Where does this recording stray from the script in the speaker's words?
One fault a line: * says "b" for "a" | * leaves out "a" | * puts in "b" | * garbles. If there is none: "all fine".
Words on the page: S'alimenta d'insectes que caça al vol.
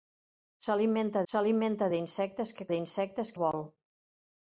* puts in "s'alimenta"
* says "d'insectes" for "caça"